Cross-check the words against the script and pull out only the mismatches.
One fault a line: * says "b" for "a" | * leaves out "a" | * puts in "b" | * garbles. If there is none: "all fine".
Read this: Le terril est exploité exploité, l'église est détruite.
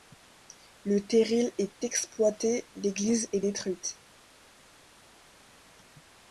* leaves out "exploité"